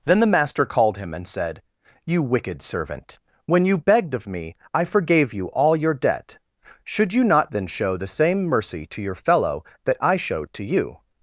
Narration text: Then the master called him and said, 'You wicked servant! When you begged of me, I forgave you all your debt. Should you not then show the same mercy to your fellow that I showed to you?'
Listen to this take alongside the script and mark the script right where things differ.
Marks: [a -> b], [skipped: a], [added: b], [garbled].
Then the master called him and said, 'You wicked servant! When you begged of me, I forgave you all your debt. Should you not then show the same mercy to your fellow that I showed to you?'